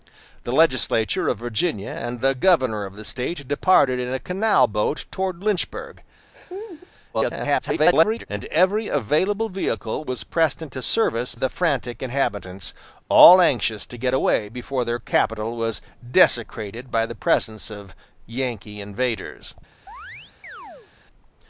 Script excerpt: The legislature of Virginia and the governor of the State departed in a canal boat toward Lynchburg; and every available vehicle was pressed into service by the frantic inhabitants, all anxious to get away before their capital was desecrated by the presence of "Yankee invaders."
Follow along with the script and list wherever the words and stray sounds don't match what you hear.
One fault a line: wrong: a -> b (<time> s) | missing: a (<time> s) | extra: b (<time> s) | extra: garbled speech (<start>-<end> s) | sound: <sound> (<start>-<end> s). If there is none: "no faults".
sound: laugh (6.3-6.9 s)
extra: garbled speech (7.1-8.3 s)
missing: by (11.3 s)
sound: chirp (19.9-20.9 s)